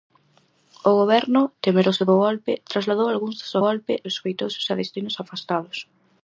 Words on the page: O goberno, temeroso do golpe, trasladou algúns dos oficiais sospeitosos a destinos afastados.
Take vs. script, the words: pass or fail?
fail